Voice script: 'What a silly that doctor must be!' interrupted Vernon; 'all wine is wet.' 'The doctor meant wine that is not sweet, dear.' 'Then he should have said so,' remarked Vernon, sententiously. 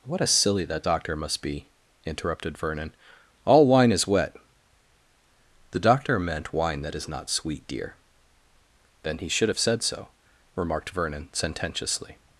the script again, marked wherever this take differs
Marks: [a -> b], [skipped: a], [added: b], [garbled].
'What a silly that doctor must be!' interrupted Vernon; 'all wine is wet.' 'The doctor meant wine that is not sweet, dear.' 'Then he should have said so,' remarked Vernon, sententiously.